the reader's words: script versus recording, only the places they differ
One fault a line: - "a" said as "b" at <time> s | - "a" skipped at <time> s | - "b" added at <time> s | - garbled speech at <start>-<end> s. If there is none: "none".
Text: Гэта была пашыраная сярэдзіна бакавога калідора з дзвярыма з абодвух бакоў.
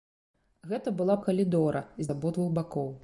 - "пашыраная сярэдзіна бакавога" skipped at 1.2 s
- "дзвярыма" skipped at 2.1 s